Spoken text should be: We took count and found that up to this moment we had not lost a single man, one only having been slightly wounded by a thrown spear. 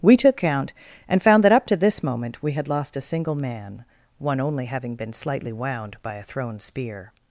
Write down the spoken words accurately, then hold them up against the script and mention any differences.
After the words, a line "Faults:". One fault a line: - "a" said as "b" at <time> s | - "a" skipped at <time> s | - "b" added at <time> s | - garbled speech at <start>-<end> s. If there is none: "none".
We took count and found that up to this moment we had lost a single man, one only having been slightly wound by a thrown spear.
Faults:
- "not" skipped at 2.7 s
- "wounded" said as "wound" at 5.5 s